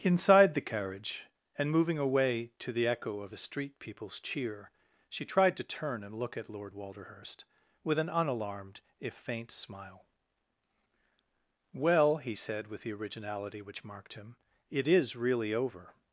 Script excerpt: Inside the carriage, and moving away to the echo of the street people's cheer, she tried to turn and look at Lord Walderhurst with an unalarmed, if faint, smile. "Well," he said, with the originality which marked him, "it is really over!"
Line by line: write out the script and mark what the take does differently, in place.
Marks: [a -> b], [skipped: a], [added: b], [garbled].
Inside the carriage, and moving away to the echo of the street people's cheer, she tried to turn and look at Lord Walderhurst with an unalarmed, if faint, smile. "Well," he said, with the originality which marked him, "it is really over!"